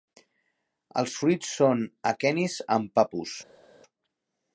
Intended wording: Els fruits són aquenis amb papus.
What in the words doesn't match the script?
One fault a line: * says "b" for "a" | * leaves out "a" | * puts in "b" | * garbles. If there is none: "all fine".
all fine